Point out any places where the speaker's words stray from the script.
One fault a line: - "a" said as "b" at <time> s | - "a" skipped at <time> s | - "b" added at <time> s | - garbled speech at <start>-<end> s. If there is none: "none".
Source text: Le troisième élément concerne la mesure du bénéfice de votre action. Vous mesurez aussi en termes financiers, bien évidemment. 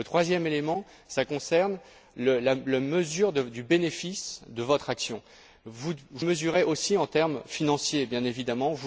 none